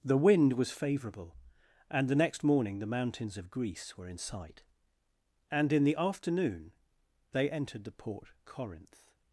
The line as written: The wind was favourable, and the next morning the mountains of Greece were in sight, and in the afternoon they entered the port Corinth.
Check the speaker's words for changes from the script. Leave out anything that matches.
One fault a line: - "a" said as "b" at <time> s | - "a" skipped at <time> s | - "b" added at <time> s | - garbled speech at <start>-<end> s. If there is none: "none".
none